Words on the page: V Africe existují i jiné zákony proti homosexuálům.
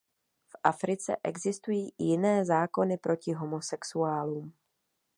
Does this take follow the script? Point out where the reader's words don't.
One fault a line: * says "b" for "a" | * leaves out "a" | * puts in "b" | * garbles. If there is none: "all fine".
all fine